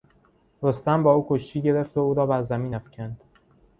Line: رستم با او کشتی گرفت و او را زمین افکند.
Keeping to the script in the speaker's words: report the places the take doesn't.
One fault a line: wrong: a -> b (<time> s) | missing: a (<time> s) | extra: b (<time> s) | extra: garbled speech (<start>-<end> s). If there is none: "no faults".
extra: بر (2.2 s)